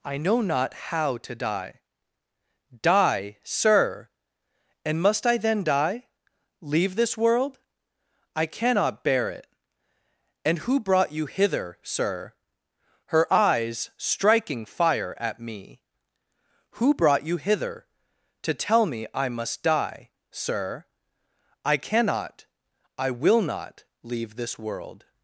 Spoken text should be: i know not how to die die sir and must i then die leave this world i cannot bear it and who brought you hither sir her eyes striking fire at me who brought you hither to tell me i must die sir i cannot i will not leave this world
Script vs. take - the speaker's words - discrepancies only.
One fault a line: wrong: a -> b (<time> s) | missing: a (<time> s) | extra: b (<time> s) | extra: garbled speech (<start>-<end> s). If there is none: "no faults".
no faults